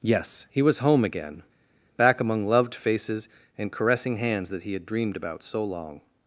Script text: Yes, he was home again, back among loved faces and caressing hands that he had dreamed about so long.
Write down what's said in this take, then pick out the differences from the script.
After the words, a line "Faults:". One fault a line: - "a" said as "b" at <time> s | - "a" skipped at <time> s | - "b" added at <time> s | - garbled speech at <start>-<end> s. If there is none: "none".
Yes, he was home again, back among loved faces and caressing hands that he had dreamed about so long.
Faults:
none